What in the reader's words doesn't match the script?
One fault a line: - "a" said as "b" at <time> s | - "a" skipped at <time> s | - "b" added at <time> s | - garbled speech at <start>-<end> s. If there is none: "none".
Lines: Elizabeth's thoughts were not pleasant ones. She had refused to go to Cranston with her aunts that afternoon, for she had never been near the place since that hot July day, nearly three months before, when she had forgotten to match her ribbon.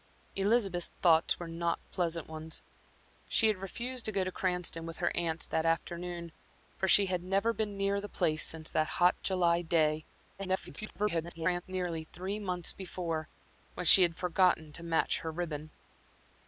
- garbled speech at 10.4-11.6 s